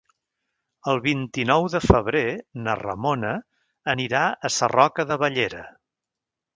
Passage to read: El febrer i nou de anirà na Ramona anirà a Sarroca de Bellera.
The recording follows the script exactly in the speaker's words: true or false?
false